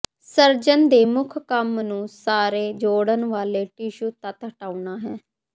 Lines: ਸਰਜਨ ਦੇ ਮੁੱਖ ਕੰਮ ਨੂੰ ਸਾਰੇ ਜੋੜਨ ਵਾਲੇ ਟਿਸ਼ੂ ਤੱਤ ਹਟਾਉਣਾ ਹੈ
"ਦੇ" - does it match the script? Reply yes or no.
yes